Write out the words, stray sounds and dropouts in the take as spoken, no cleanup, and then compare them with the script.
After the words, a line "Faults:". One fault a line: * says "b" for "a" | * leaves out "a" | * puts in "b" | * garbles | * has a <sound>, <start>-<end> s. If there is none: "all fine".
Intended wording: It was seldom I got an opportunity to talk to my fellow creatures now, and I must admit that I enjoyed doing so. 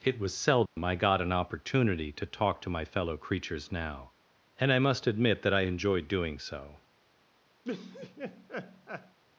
It was seldom I got an opportunity to talk to my fellow creatures now, and I must admit that I enjoyed doing so.
Faults:
* has a dropout, 0.7-0.8 s
* has a laugh, 7.6-9.2 s